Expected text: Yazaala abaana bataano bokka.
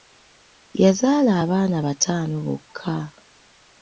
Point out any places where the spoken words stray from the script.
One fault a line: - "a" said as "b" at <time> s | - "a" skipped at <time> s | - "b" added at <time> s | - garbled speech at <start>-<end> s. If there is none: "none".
none